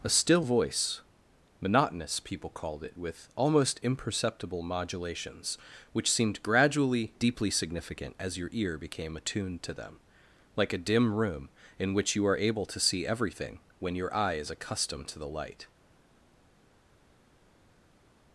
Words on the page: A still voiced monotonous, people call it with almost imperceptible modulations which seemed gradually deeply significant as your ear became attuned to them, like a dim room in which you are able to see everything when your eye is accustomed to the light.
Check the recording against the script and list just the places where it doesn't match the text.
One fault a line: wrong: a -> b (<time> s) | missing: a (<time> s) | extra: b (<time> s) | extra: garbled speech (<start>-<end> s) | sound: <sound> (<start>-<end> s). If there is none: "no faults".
wrong: voiced -> voice (0.4 s)
wrong: call -> called (2.5 s)